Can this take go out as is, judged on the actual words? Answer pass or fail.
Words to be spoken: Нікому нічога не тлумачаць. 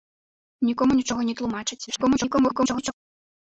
fail